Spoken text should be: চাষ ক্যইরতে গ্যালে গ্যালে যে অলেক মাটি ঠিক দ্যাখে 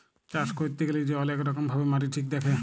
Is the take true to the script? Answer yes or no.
no